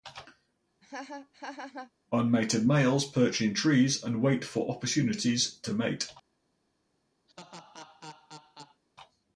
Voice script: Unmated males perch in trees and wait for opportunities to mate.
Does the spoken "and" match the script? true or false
true